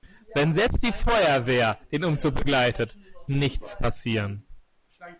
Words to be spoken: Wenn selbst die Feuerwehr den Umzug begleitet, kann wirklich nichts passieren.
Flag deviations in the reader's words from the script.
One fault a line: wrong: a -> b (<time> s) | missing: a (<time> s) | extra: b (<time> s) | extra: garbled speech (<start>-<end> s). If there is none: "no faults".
missing: kann wirklich (3.0 s)